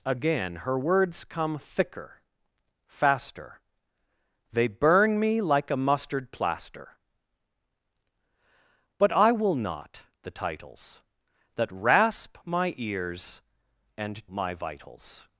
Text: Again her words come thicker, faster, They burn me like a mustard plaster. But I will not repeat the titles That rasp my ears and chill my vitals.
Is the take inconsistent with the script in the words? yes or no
yes